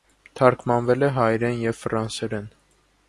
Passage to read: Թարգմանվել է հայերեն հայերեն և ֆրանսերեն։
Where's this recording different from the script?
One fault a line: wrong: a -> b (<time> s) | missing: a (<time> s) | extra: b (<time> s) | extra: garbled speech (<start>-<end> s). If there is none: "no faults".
missing: հայերեն (1.6 s)